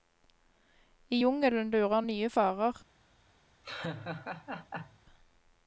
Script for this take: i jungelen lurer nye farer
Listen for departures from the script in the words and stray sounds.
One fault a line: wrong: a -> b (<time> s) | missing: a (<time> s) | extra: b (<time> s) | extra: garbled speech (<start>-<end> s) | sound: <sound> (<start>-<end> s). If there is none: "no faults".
sound: laugh (3.6-5.0 s)